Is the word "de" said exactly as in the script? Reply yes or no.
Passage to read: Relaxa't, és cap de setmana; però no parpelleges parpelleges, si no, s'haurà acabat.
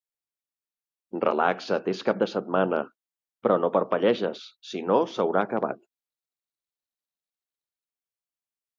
yes